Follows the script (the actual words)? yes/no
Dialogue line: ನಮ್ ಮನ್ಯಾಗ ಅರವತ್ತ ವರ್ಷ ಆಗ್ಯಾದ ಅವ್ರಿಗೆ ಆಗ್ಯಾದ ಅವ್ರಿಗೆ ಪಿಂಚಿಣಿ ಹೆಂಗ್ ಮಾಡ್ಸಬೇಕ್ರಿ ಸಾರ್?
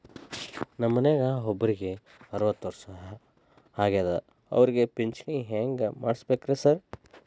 no